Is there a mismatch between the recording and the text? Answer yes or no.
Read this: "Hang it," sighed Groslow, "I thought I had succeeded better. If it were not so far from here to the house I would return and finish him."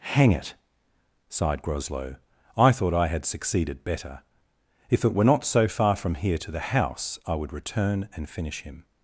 no